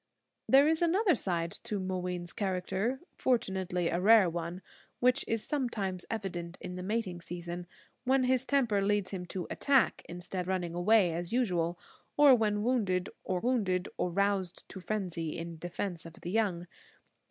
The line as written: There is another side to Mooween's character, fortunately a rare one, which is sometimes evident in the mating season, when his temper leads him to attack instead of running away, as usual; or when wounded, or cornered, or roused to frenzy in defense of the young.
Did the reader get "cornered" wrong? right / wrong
wrong